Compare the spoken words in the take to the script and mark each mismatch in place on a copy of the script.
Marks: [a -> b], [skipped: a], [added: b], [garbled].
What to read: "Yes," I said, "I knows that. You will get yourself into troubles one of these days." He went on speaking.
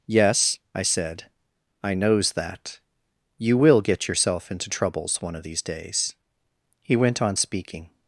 "Yes," I said, "I knows that. You will get yourself into troubles one of these days." He went on speaking.